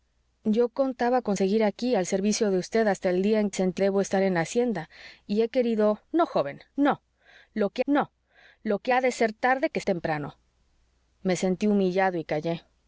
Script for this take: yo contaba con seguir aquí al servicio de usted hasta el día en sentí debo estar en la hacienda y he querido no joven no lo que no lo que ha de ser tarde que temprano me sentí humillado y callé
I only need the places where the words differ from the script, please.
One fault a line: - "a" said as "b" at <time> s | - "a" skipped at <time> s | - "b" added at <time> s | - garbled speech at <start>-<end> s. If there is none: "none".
none